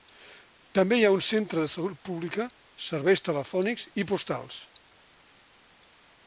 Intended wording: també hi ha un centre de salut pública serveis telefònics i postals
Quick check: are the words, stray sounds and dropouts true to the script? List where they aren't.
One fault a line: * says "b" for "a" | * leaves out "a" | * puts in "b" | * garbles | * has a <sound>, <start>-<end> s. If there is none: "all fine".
all fine